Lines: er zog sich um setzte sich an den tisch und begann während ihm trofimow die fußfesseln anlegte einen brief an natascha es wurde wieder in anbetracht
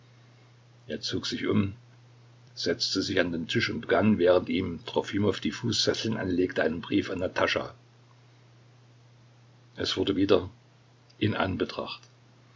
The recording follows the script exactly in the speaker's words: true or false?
true